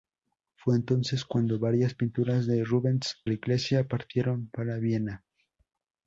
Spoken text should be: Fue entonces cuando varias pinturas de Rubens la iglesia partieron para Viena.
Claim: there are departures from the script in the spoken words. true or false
false